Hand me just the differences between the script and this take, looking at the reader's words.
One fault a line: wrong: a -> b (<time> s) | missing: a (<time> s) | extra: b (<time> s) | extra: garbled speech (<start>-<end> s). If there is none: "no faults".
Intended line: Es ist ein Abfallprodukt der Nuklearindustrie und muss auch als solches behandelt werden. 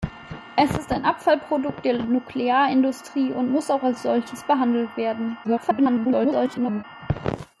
extra: garbled speech (5.4-6.8 s)